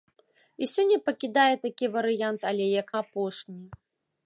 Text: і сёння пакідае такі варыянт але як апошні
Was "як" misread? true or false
false